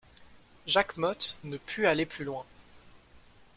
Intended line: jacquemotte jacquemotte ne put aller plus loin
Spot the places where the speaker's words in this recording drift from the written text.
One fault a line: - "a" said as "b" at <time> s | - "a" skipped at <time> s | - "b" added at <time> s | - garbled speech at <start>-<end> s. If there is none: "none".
- "jacquemotte" skipped at 1.4 s